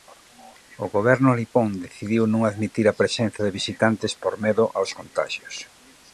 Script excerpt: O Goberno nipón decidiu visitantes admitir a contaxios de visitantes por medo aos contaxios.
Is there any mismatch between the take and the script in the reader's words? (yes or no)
yes